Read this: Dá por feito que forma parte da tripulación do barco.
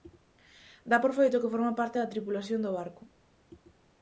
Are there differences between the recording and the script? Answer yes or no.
no